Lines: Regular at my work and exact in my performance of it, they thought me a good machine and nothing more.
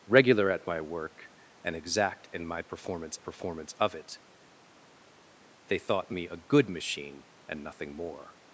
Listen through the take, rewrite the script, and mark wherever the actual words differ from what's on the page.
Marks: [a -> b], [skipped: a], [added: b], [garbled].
Regular at my work and exact in my performance [added: performance] of it, they thought me a good machine and nothing more.